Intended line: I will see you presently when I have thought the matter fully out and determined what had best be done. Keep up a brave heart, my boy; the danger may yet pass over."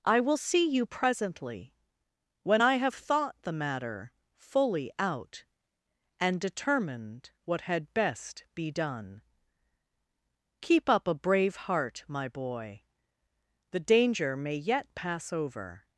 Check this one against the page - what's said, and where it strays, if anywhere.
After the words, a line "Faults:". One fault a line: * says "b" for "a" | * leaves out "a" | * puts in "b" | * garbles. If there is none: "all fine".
I will see you presently when I have thought the matter fully out and determined what had best be done. Keep up a brave heart, my boy; the danger may yet pass over."
Faults:
all fine